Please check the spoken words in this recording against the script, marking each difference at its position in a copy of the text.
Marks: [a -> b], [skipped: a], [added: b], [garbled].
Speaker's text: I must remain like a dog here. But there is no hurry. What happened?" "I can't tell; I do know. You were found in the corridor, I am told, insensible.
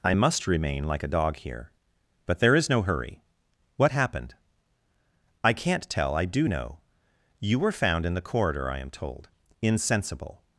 I must remain like a dog here. But there is no hurry. What happened?" "I can't tell; I do know. You were found in the corridor, I am told, insensible.